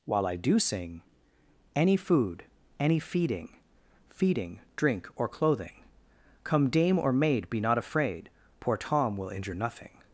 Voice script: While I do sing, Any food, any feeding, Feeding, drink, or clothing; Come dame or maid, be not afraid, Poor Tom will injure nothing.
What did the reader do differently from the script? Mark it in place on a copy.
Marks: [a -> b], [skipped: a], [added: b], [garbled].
While I do sing, Any food, any feeding, Feeding, drink, or clothing; Come dame or maid, be not afraid, Poor Tom will injure nothing.